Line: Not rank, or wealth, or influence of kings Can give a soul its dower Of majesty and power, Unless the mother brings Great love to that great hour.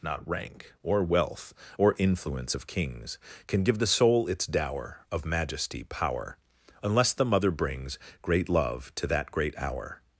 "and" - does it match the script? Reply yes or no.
no